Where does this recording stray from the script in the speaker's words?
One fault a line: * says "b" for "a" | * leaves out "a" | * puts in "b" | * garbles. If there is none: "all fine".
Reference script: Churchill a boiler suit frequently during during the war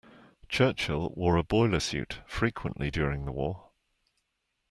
* puts in "wore"
* leaves out "during"